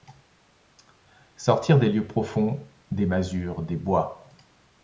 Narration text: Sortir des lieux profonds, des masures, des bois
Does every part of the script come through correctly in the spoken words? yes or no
yes